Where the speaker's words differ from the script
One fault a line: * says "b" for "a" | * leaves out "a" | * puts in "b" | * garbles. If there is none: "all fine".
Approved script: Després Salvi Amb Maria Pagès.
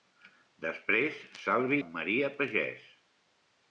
all fine